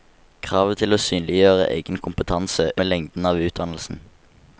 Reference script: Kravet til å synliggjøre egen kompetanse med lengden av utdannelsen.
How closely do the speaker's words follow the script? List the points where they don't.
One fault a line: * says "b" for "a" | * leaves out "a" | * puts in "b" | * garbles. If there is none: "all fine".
all fine